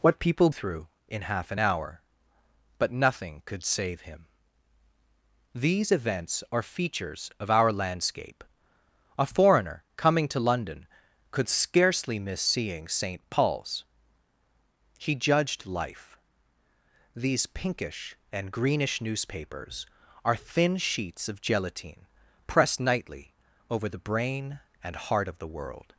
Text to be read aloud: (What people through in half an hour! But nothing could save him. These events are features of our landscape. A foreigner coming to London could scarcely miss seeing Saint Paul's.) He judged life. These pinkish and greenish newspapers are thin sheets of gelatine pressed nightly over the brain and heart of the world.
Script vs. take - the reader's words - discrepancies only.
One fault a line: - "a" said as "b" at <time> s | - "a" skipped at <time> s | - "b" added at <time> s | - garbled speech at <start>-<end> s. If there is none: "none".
none